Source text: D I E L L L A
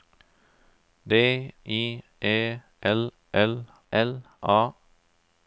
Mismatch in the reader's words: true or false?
false